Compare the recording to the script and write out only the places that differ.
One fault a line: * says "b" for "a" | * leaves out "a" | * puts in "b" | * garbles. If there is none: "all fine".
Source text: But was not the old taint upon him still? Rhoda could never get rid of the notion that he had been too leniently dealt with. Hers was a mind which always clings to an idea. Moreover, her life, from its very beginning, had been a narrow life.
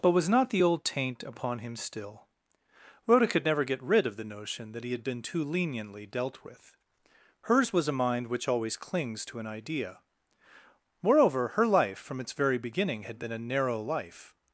all fine